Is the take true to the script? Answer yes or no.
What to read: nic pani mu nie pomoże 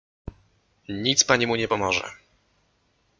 yes